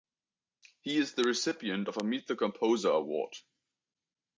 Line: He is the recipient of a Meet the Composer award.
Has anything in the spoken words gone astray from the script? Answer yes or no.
no